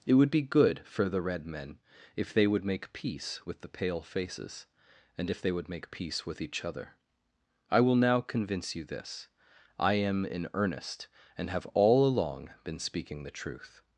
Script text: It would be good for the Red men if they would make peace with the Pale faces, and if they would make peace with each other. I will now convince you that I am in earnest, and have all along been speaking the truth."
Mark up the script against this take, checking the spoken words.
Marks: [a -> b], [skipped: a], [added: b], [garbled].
It would be good for the Red men if they would make peace with the Pale faces, and if they would make peace with each other. I will now convince you [that -> this] I am in earnest, and have all along been speaking the truth."